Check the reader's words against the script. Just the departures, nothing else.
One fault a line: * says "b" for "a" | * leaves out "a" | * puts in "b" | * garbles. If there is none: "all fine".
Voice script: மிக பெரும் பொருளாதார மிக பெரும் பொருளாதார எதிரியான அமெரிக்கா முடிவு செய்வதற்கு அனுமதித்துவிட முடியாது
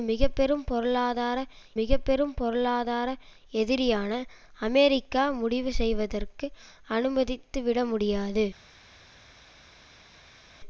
all fine